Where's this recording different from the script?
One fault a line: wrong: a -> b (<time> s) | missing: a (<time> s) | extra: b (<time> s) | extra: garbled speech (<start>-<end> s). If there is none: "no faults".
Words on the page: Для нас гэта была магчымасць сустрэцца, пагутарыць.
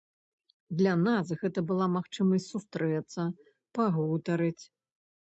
no faults